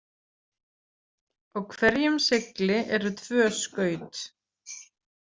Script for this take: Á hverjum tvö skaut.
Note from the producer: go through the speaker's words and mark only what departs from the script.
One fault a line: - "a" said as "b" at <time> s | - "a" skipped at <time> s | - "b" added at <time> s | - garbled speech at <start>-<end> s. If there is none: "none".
- "segli eru" added at 2.3 s